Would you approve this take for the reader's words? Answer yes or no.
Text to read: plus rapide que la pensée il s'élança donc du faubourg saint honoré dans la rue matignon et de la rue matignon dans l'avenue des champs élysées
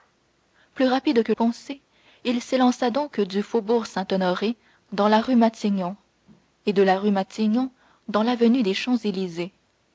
no